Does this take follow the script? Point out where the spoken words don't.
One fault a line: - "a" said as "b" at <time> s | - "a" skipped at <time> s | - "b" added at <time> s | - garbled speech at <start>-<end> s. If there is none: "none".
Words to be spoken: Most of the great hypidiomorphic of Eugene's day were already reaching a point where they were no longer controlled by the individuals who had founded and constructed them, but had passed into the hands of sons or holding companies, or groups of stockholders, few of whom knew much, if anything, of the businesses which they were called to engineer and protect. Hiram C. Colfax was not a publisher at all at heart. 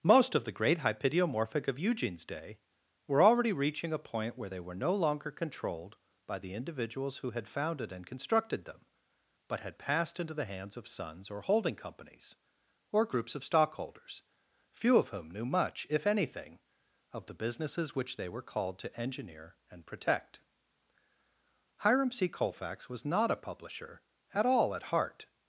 none